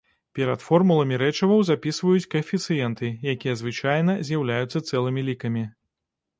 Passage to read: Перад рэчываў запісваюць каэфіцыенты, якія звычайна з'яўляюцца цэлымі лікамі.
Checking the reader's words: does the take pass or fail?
fail